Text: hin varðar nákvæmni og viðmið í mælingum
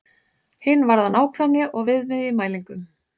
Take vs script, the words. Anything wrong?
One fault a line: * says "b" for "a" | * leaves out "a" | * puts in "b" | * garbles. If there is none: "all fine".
all fine